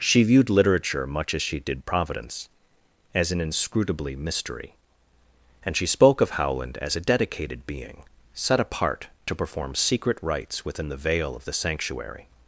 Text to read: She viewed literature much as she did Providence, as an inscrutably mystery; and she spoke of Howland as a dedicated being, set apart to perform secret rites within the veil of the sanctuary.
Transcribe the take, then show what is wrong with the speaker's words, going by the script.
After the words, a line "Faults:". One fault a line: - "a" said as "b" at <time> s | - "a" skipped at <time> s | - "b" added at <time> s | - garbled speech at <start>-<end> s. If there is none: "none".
She viewed literature much as she did Providence, as an inscrutably mystery; and she spoke of Howland as a dedicated being, set apart to perform secret rites within the veil of the sanctuary.
Faults:
none